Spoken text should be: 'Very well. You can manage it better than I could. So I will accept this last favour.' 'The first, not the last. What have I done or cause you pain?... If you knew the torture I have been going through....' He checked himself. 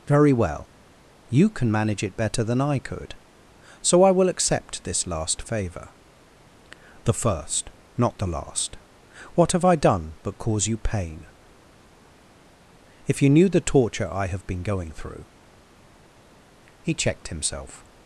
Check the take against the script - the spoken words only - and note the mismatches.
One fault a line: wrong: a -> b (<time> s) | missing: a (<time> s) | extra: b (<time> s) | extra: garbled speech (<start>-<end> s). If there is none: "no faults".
wrong: or -> but (10.2 s)